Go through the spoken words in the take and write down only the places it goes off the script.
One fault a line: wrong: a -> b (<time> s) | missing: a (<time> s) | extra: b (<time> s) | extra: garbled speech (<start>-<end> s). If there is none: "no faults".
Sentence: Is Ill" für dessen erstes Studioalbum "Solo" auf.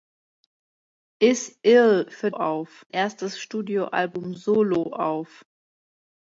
wrong: dessen -> auf (2.3 s)